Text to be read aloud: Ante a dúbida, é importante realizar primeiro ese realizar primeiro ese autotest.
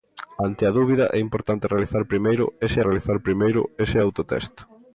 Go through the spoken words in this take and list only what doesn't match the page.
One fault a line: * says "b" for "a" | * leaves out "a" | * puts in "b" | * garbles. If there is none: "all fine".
all fine